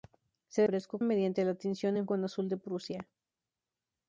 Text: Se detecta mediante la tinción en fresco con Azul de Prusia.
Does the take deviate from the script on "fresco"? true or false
true